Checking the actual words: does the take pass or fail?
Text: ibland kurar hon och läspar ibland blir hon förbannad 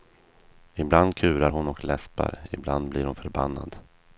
pass